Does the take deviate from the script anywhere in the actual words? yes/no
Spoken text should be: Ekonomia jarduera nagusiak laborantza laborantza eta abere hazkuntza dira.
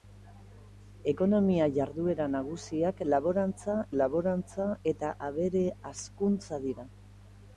no